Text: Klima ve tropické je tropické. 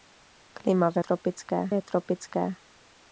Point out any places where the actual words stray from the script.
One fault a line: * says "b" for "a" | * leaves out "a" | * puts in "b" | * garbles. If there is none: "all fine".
all fine